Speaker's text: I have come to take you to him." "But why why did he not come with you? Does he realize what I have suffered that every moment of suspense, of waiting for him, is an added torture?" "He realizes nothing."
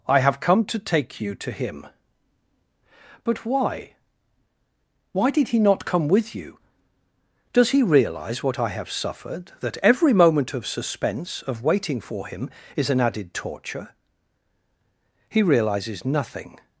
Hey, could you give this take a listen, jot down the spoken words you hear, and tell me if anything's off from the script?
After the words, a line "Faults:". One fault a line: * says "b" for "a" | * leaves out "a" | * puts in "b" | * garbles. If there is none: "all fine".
I have come to take you to him." "But why why did he not come with you? Does he realize what I have suffered that every moment of suspense, of waiting for him, is an added torture?" "He realizes nothing."
Faults:
all fine